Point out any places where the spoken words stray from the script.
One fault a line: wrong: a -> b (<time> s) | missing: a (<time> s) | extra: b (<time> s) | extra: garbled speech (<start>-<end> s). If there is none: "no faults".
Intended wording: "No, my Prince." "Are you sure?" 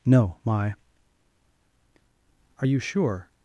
missing: Prince (0.7 s)